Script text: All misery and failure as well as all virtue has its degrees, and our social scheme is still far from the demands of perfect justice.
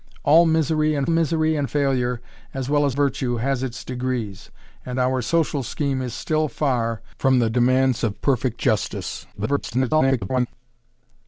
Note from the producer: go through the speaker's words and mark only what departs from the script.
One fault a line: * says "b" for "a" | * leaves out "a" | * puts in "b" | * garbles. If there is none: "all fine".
* puts in "misery and"
* leaves out "all"
* garbles